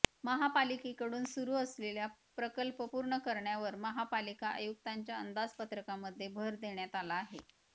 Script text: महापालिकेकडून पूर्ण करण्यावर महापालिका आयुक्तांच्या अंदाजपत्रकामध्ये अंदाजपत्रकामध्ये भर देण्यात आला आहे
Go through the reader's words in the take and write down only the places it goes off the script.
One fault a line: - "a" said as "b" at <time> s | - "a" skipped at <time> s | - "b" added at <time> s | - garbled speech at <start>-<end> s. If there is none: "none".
- "सुरू असलेले प्रकल्प" added at 1.2 s
- "अंदाजपत्रकामध्ये" skipped at 6.3 s